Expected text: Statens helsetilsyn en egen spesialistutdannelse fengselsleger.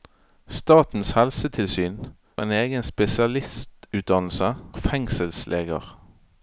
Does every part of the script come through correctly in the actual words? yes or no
yes